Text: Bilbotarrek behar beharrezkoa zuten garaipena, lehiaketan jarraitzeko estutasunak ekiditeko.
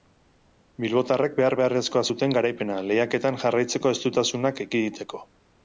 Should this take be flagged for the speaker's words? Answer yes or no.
no